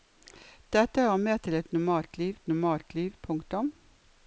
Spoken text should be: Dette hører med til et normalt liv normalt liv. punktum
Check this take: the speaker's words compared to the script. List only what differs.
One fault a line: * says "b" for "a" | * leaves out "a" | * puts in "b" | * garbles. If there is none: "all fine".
all fine